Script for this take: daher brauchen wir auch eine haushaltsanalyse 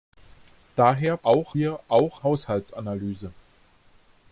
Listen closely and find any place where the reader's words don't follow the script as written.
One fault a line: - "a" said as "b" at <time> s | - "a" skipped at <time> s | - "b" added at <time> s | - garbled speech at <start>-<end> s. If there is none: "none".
- "brauchen" said as "auch" at 1.2 s
- "eine" skipped at 2.2 s